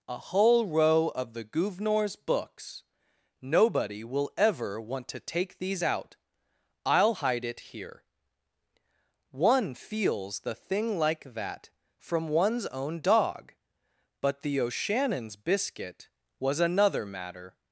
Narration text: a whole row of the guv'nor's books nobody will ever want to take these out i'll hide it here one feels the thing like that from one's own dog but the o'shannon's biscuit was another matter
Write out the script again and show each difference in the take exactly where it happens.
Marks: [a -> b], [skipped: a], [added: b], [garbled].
a whole row of the guv'nor's books nobody will ever want to take these out i'll hide it here one feels the thing like that from one's own dog but the o'shannon's biscuit was another matter